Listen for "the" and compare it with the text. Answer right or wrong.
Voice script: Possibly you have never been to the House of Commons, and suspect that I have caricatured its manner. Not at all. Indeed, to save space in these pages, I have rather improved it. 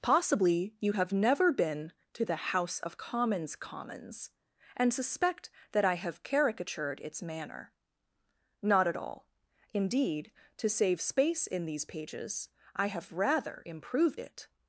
right